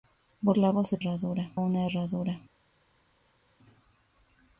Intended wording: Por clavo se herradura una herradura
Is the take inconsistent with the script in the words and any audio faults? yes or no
no